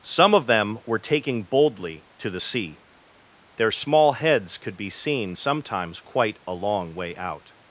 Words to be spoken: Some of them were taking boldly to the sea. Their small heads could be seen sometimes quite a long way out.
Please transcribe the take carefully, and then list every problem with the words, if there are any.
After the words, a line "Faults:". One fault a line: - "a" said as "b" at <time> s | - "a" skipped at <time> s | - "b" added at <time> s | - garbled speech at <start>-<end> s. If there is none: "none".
Some of them were taking boldly to the sea. Their small heads could be seen sometimes quite a long way out.
Faults:
none